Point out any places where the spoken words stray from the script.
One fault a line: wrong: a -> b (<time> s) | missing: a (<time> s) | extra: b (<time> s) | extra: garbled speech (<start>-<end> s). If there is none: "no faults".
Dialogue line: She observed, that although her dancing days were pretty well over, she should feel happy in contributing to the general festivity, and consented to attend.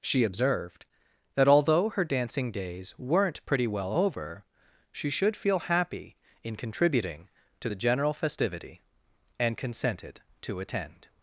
wrong: were -> weren't (3.0 s)